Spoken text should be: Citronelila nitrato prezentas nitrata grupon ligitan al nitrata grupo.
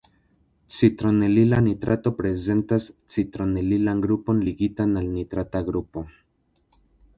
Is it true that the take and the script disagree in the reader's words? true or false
true